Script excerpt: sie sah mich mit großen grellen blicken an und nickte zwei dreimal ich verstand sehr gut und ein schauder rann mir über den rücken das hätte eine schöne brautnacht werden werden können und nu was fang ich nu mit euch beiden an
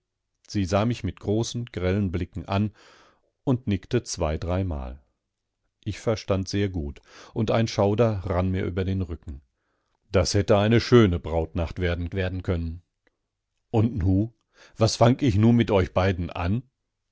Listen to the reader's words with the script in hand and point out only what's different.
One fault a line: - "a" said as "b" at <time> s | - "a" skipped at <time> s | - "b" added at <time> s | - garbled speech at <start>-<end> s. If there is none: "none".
none